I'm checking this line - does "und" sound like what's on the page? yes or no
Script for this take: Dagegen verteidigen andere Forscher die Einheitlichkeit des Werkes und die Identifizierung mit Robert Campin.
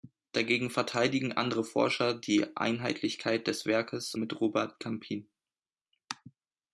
no